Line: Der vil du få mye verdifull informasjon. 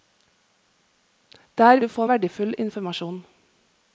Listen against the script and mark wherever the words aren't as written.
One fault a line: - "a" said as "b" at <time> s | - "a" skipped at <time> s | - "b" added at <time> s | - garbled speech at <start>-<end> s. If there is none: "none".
- "vil" skipped at 1.8 s
- "mye" skipped at 2.1 s